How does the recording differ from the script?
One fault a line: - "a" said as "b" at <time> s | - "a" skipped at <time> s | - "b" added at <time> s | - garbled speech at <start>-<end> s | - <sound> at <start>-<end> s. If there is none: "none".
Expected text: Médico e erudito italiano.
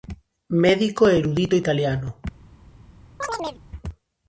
- chirp at 3.2-3.6 s